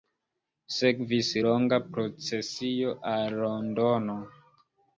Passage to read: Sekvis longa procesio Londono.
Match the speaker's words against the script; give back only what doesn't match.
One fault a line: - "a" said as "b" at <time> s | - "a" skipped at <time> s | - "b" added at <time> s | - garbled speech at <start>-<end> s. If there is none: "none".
- "al" added at 3.2 s